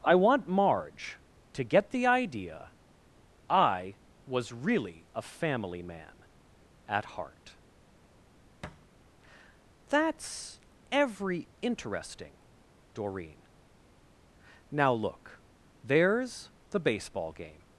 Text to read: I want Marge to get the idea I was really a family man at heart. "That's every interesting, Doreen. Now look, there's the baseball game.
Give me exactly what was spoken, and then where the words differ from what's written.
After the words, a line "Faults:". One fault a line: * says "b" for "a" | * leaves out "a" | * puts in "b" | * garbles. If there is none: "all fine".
I want Marge to get the idea I was really a family man at heart. "That's every interesting, Doreen. Now look, there's the baseball game.
Faults:
all fine